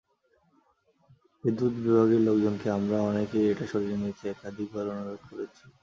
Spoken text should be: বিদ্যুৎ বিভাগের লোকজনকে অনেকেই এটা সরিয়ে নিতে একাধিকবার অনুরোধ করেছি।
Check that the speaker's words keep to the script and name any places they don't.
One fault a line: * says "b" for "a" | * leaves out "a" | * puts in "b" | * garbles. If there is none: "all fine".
* puts in "আমরা"